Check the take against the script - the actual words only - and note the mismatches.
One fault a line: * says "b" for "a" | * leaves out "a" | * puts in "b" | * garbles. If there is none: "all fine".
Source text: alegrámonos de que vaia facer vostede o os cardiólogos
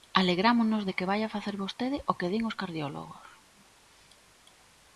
* puts in "que din"